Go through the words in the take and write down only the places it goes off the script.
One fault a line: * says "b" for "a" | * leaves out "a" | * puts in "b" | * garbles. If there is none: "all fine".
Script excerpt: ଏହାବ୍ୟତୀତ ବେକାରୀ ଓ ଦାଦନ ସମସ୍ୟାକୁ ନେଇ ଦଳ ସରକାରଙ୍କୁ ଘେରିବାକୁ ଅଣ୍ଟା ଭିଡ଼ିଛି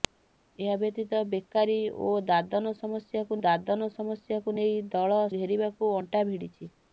* puts in "ଦାଦନ ସମସ୍ୟାକୁ"
* leaves out "ସରକାରଙ୍କୁ"